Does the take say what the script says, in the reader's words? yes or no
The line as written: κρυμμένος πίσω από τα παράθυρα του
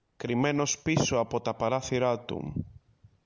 yes